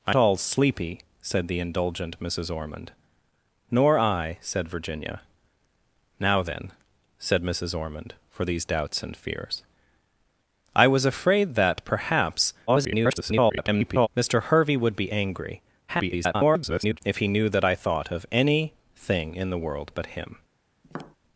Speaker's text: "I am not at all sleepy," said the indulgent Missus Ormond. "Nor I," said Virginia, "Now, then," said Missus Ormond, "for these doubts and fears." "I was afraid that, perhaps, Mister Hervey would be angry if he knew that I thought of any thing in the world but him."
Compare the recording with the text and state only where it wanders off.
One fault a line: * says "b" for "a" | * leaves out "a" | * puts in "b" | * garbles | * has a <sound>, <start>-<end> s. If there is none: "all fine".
* leaves out "am not at"
* garbles
* garbles
* has a tap, 20.8-21.2 s